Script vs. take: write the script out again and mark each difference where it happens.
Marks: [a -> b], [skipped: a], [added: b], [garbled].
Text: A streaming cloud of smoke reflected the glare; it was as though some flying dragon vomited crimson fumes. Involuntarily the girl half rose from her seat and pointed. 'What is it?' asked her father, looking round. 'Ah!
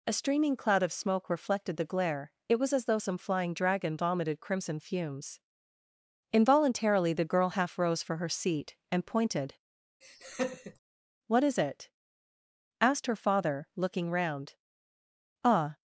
A streaming cloud of smoke reflected the glare; it was as though some flying dragon vomited crimson fumes. Involuntarily the girl half rose [from -> for] her seat and pointed. 'What is it?' asked her father, looking round. 'Ah!